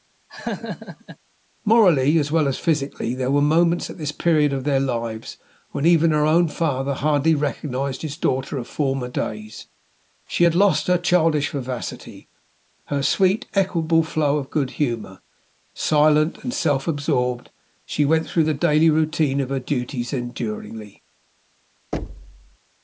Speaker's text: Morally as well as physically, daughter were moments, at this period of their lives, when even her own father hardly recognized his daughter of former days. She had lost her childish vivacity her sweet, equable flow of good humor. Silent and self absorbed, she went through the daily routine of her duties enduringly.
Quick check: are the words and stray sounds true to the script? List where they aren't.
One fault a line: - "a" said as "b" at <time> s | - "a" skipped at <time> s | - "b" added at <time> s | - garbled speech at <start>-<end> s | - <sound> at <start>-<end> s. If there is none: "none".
- laugh at 0.3-1.2 s
- "daughter" said as "there" at 3.1 s
- thud at 21.9-22.6 s